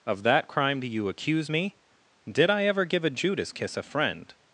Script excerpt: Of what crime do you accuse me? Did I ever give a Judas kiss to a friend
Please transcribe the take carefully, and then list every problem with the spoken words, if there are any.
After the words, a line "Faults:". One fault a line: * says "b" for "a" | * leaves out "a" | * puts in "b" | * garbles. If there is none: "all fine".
Of that crime do you accuse me? Did I ever give a Judas kiss a friend
Faults:
* says "that" for "what"
* leaves out "to"